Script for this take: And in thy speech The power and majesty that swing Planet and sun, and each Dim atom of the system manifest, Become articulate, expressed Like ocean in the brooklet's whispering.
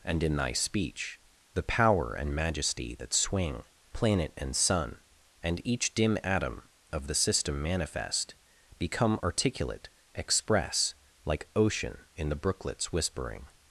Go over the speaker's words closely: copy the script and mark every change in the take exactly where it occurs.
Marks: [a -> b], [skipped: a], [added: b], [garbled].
And in thy speech The power and majesty that swing Planet and sun, and each Dim atom of the system manifest, Become articulate, [expressed -> express] Like ocean in the brooklet's whispering.